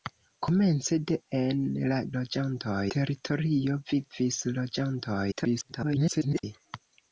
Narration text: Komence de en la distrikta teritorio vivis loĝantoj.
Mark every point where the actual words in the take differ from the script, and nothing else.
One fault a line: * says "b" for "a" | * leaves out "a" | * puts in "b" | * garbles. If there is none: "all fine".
* says "loĝantoj" for "distrikta"
* garbles